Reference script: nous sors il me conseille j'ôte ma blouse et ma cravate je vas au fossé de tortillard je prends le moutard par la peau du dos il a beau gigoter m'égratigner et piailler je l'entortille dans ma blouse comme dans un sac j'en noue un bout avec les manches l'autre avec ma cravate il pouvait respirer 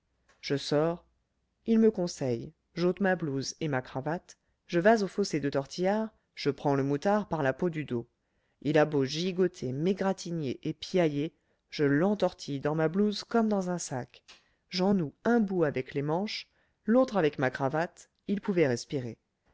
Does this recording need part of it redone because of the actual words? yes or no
yes